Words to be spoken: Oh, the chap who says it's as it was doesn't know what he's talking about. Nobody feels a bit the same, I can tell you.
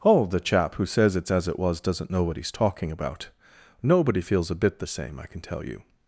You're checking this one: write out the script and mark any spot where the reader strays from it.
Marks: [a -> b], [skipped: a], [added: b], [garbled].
Oh, the chap who says it's as it was doesn't know what he's talking about. Nobody feels a bit the same, I can tell you.